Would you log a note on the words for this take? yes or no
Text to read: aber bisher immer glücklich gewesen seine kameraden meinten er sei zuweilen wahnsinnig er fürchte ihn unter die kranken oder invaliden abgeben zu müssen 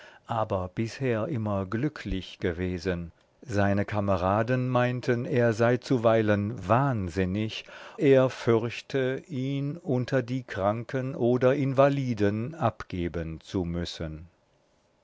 no